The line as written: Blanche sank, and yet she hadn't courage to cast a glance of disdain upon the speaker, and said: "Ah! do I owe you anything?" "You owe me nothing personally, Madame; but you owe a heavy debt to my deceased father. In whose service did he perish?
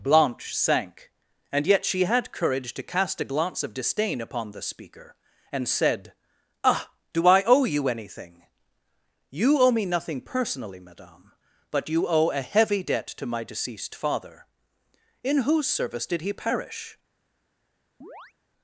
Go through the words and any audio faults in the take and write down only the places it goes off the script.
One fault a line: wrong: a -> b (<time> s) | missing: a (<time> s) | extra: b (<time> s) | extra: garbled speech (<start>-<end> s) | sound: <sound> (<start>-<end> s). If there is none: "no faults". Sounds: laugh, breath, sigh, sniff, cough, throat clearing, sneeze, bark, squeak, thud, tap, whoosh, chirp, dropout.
wrong: hadn't -> had (2.0 s)
sound: chirp (18.0-18.3 s)